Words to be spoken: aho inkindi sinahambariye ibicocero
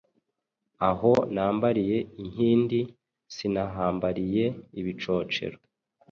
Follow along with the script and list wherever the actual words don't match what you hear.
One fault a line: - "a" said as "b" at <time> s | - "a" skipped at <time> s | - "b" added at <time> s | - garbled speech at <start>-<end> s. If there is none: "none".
- "nambariye" added at 1.3 s